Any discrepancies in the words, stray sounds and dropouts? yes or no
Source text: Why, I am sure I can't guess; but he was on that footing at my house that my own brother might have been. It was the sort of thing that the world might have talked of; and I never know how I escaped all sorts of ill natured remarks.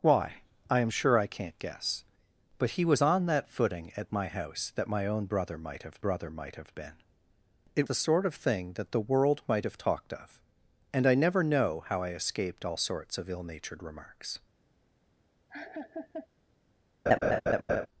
yes